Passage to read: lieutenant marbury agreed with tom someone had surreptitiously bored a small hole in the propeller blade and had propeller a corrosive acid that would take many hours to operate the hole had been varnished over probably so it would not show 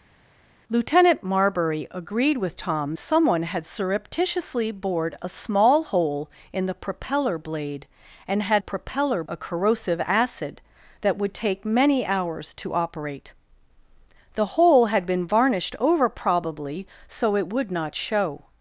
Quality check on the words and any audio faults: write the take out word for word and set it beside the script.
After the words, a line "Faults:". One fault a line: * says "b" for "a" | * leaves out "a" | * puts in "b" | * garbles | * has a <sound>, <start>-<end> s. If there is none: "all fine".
lieutenant marbury agreed with tom someone had surreptitiously bored a small hole in the propeller blade and had propeller a corrosive acid that would take many hours to operate the hole had been varnished over probably so it would not show
Faults:
all fine